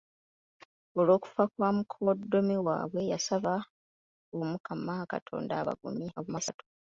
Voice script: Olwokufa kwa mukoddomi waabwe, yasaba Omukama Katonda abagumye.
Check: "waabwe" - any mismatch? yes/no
no